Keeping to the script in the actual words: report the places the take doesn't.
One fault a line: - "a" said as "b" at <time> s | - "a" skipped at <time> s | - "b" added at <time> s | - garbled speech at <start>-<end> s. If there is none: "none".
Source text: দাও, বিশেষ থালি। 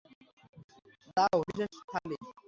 none